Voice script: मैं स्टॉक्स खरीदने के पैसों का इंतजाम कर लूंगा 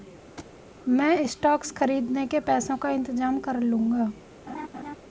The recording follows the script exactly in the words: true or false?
true